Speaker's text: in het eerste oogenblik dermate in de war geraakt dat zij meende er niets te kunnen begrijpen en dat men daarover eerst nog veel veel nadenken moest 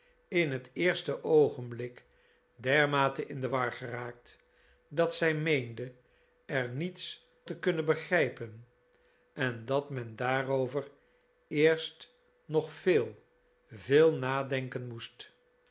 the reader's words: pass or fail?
pass